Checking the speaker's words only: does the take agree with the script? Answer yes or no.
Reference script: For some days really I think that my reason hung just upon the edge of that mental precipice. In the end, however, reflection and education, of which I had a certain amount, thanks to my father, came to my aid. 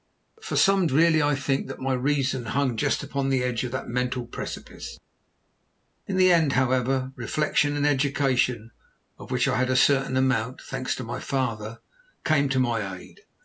no